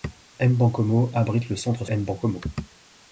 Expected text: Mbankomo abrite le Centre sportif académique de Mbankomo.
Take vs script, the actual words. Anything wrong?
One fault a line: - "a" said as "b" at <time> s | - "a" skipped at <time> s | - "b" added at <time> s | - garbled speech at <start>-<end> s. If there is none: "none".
- "sportif académique de" skipped at 1.9 s